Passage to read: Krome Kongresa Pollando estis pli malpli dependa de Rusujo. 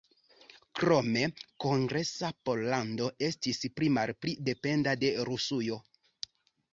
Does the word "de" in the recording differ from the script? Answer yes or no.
no